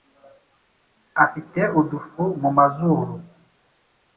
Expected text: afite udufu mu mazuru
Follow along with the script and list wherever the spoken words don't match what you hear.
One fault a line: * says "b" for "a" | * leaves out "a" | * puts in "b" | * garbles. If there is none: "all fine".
all fine